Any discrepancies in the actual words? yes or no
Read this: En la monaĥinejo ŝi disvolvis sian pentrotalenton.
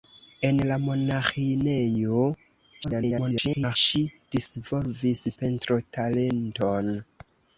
yes